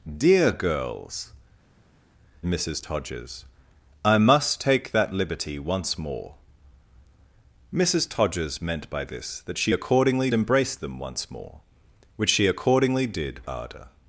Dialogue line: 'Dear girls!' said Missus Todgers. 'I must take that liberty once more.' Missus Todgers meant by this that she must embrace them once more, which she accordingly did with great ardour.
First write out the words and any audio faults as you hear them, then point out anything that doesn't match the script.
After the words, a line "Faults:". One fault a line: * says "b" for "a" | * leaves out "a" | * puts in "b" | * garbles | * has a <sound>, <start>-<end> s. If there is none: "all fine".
'Dear girls!' Missus Todgers. 'I must take that liberty once more.' Missus Todgers meant by this that she accordingly embrace them once more, which she accordingly did ardour.
Faults:
* leaves out "said"
* says "accordingly" for "must"
* leaves out "with great"